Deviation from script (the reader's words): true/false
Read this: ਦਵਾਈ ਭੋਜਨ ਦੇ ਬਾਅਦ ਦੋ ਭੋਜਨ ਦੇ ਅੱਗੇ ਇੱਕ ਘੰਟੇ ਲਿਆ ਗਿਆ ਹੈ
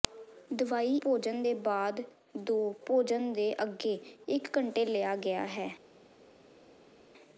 false